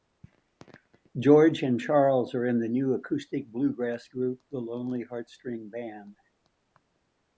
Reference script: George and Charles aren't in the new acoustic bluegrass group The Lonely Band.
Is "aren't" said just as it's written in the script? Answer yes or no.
no